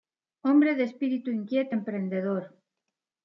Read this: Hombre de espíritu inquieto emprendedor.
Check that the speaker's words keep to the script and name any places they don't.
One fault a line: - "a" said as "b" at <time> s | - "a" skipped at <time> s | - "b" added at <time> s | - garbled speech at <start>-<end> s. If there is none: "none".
none